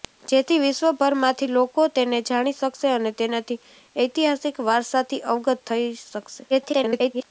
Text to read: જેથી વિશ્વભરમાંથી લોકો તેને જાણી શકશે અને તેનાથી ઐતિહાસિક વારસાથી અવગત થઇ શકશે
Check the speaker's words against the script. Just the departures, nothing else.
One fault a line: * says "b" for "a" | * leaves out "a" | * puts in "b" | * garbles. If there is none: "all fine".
* garbles